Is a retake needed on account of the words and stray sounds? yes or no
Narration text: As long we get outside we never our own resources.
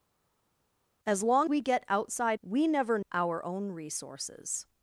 no